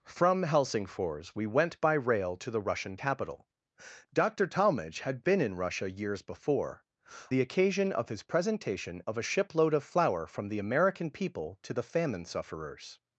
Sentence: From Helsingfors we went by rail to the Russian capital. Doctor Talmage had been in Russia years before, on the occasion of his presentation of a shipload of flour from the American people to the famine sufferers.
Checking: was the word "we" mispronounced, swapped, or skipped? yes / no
no